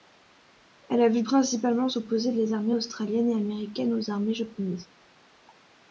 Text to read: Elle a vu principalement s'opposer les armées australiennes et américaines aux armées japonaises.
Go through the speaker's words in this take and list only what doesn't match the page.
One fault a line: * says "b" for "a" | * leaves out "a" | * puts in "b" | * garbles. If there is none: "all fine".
all fine